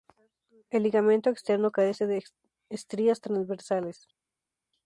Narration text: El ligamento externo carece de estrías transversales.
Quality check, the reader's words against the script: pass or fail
pass